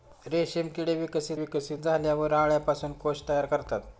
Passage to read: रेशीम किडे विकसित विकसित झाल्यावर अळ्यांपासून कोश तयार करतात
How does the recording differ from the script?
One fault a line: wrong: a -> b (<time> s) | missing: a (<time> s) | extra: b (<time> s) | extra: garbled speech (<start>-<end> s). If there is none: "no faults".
no faults